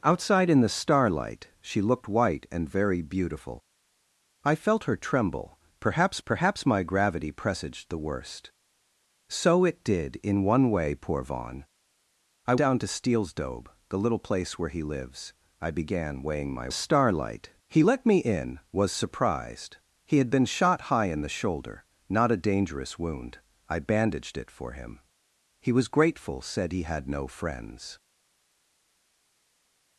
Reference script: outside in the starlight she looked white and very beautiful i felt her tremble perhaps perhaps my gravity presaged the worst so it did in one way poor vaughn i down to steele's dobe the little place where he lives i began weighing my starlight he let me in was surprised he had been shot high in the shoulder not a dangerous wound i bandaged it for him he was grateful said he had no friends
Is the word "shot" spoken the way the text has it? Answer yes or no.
yes